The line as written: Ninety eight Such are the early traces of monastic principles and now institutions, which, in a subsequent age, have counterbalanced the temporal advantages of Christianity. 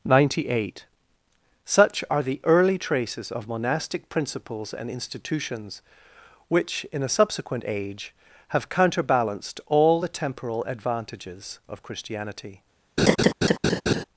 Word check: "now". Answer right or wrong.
wrong